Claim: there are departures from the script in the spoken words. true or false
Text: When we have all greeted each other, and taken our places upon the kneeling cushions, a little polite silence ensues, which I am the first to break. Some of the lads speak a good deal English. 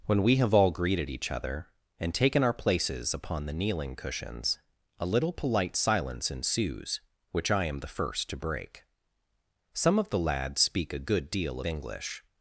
false